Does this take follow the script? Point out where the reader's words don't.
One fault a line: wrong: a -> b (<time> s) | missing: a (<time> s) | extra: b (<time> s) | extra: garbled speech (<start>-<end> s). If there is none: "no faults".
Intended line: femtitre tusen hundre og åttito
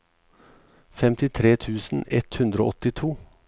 extra: ett (2.2 s)